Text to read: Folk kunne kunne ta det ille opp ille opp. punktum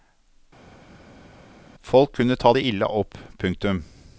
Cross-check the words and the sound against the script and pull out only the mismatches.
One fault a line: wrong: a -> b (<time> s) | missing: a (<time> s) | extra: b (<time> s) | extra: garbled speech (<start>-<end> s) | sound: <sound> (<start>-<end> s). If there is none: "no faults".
missing: kunne (2.4 s)
missing: ille opp (3.2 s)